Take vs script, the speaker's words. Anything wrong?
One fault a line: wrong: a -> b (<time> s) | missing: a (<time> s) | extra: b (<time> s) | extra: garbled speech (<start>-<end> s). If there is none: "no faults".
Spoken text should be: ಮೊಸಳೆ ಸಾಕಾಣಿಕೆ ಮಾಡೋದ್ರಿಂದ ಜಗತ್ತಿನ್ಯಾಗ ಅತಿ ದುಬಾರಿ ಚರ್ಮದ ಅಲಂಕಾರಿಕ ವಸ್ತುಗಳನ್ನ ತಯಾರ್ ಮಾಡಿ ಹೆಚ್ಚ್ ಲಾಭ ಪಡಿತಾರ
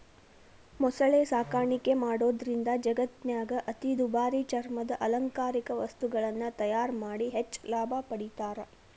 no faults